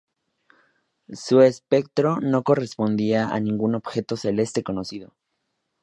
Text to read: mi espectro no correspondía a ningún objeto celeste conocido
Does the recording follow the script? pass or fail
fail